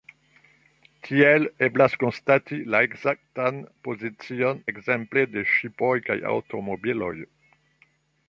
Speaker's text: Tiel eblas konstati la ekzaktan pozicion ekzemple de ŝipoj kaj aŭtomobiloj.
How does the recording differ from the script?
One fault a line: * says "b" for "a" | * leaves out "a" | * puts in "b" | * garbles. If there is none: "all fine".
all fine